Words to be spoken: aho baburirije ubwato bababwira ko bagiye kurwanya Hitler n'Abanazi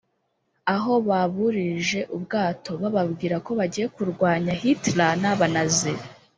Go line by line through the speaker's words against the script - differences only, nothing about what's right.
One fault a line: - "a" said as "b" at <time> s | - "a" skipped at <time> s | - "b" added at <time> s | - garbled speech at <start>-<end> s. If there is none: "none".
none